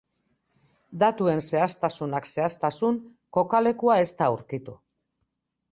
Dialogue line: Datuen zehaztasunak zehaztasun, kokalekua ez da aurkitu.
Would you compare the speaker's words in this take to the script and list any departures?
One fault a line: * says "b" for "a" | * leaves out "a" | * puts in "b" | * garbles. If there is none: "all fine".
all fine